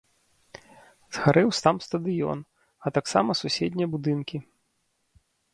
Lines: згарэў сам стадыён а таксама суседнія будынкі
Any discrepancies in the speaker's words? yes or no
no